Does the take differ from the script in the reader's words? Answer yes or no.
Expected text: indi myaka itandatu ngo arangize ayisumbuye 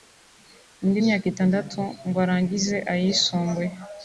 no